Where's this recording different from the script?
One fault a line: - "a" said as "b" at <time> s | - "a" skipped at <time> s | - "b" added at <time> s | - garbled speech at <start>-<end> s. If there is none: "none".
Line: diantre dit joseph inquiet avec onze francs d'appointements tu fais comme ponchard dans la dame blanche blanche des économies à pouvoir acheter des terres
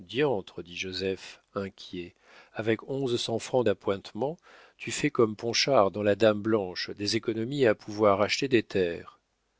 - "cents" added at 3.2 s
- "blanche" skipped at 6.9 s